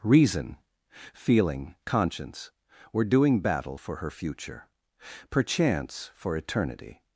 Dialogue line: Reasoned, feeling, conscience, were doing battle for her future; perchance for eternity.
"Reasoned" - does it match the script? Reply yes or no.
no